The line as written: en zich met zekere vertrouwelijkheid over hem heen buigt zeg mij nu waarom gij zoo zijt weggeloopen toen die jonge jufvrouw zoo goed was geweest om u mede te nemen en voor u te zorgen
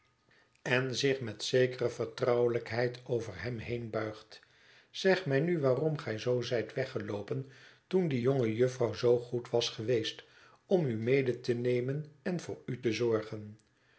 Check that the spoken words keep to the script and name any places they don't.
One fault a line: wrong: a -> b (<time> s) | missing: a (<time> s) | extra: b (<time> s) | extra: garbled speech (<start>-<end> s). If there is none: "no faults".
no faults